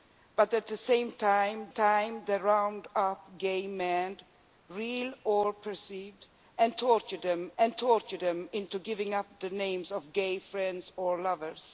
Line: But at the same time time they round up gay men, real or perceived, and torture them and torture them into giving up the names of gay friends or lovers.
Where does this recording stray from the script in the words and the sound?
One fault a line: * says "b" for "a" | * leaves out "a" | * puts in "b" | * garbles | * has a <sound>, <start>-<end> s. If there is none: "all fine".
all fine